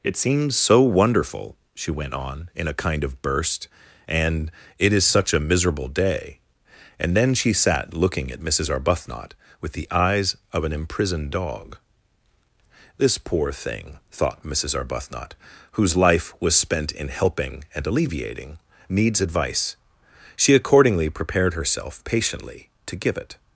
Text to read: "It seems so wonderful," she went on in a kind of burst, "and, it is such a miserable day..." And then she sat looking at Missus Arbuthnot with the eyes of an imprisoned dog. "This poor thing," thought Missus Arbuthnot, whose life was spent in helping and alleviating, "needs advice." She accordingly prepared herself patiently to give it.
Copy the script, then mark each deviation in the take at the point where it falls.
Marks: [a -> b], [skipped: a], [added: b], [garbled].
"It seems so wonderful," she went on in a kind of burst, "and, it is such a miserable day..." And then she sat looking at Missus Arbuthnot with the eyes of an imprisoned dog. "This poor thing," thought Missus Arbuthnot, whose life was spent in helping and alleviating, "needs advice." She accordingly prepared herself patiently to give it.